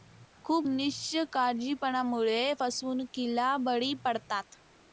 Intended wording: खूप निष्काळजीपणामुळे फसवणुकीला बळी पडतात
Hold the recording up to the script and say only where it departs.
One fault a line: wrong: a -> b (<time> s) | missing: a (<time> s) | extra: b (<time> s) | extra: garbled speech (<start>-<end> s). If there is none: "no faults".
no faults